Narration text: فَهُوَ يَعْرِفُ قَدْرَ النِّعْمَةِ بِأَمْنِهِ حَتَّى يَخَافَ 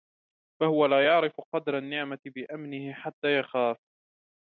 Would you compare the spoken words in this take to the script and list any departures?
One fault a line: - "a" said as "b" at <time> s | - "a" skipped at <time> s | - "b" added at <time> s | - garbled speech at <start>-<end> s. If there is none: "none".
- "لَا" added at 0.8 s